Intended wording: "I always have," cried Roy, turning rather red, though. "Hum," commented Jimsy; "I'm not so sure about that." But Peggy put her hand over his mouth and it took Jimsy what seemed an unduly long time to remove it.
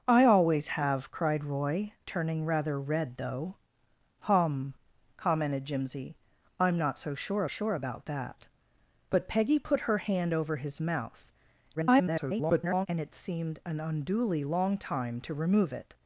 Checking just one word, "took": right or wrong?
wrong